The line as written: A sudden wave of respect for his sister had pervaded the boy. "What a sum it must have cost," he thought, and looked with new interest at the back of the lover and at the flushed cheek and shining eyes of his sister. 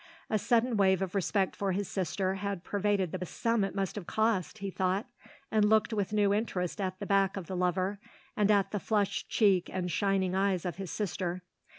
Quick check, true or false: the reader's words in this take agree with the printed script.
false